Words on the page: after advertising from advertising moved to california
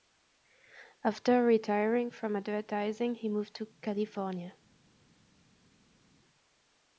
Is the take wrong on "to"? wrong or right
right